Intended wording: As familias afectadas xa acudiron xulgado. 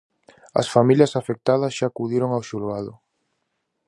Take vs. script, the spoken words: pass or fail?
fail